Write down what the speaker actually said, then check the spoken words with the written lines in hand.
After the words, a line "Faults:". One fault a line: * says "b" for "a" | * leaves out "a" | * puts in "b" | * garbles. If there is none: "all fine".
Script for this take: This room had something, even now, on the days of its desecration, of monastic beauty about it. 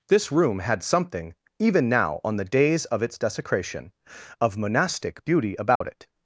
This room had something, even now, on the days of its desecration, of monastic beauty about it.
Faults:
all fine